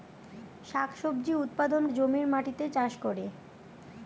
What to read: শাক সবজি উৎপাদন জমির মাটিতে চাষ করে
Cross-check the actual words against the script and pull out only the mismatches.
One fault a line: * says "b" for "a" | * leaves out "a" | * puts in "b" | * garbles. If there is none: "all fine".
all fine